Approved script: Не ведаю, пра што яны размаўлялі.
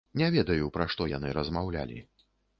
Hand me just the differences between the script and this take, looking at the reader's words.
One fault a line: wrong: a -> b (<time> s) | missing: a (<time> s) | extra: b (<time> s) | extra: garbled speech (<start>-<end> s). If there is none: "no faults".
no faults